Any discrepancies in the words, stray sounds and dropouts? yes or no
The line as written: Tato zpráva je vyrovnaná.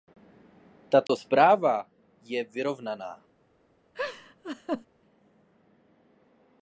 yes